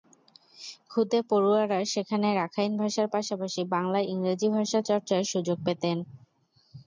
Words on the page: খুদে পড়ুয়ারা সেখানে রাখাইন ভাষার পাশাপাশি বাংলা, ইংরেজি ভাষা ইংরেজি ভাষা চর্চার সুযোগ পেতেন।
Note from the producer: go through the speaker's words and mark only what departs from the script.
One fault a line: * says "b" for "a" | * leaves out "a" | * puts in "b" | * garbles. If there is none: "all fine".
* leaves out "ইংরেজি ভাষা"